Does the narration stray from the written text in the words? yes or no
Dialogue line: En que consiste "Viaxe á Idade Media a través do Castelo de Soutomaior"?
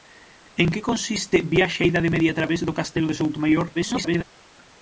yes